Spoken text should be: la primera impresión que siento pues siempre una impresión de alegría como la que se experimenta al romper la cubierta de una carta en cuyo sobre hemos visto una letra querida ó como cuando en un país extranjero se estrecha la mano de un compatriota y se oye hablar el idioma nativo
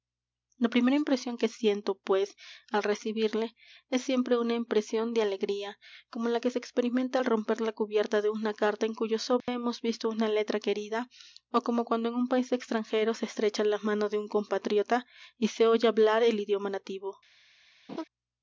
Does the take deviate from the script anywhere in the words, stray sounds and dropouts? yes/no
yes